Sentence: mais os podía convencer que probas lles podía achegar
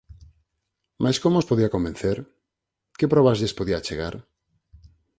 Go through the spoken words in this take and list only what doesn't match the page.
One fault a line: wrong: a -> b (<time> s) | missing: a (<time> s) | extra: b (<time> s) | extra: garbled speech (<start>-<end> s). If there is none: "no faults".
extra: como (1.2 s)